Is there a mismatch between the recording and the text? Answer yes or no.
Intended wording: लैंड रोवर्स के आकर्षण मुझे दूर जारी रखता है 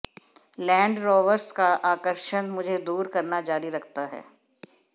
yes